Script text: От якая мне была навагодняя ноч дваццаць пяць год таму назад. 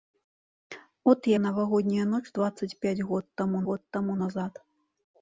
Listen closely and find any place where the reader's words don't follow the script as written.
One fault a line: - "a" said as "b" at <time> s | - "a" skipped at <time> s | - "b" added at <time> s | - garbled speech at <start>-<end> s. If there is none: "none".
- "якая мне была" skipped at 1.3 s
- "год таму" added at 3.7 s